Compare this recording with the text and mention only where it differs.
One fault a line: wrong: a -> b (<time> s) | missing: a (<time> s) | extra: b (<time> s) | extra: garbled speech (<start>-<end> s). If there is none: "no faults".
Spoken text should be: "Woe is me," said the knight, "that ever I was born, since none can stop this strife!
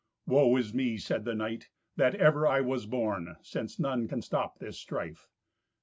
no faults